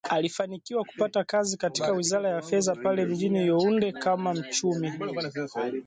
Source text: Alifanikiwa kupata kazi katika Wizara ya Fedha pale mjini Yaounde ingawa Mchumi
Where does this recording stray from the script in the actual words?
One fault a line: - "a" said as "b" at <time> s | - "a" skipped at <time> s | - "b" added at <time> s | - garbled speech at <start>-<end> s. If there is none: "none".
- "ingawa" said as "kama" at 3.9 s